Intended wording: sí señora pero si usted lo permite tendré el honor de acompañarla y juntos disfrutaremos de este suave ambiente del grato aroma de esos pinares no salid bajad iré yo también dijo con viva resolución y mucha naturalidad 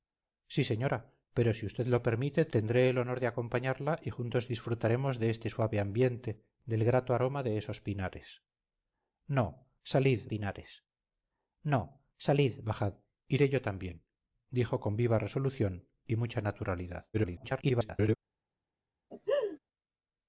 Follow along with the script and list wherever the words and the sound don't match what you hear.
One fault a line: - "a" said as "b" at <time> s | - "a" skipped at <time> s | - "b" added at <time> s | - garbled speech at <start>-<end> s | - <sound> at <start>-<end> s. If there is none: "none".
- "pinares no salid" added at 10.3 s
- garbled speech at 17.1-18.2 s
- laugh at 19.1-19.6 s